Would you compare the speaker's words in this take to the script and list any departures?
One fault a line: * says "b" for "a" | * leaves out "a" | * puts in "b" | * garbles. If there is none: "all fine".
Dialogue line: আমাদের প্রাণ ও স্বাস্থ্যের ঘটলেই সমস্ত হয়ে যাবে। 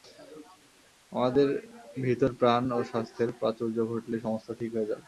* puts in "ভিতর"
* puts in "প্রাচুর্য"
* puts in "ঠিক"